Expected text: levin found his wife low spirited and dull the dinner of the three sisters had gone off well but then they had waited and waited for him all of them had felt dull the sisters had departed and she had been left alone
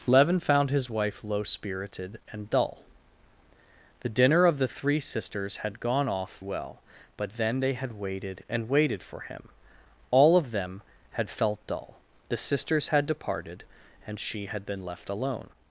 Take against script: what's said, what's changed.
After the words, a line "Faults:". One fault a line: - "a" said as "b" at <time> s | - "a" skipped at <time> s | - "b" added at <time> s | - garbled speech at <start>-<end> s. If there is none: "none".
levin found his wife low spirited and dull the dinner of the three sisters had gone off well but then they had waited and waited for him all of them had felt dull the sisters had departed and she had been left alone
Faults:
none